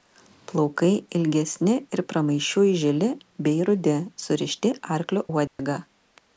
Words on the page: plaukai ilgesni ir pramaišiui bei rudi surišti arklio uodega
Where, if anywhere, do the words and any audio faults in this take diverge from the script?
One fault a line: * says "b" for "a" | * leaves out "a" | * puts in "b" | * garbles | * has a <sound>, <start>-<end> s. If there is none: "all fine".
* puts in "žili"
* has a dropout, 5.5-5.6 s